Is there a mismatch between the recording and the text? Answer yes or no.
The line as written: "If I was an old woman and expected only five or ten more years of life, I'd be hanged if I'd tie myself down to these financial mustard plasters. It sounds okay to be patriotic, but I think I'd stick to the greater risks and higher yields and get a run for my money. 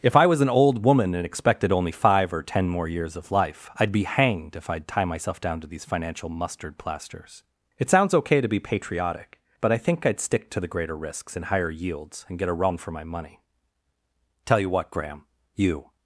yes